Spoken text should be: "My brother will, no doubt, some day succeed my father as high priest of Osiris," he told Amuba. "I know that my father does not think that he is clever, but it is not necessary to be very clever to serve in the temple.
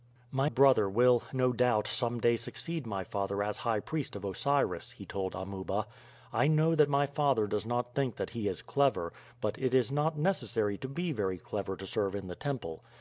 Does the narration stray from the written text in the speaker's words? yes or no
no